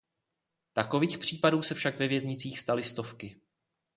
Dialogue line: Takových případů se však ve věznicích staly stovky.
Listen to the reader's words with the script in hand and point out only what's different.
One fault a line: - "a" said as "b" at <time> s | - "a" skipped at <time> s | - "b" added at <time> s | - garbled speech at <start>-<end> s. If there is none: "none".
none